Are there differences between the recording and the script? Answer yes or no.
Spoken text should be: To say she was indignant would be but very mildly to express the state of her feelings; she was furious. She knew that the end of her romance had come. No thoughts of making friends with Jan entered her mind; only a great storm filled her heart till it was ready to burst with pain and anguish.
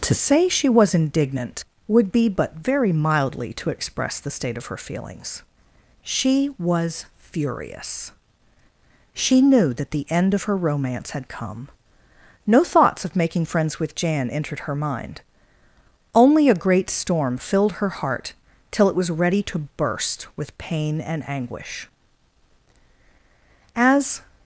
yes